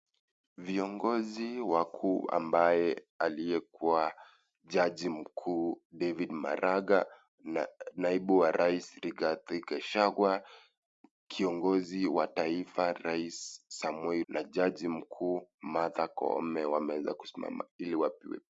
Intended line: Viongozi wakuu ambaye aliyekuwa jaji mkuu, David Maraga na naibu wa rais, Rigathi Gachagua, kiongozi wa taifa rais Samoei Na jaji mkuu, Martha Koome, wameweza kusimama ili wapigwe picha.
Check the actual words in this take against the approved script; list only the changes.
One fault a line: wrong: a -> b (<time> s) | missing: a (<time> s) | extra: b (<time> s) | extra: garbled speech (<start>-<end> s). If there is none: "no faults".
no faults